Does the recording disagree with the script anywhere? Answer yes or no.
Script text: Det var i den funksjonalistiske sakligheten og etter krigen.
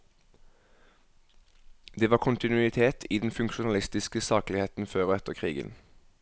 yes